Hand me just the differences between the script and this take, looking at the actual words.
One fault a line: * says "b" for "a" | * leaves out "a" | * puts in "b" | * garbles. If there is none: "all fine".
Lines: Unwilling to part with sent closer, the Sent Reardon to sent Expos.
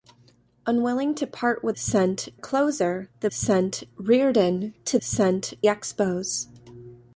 all fine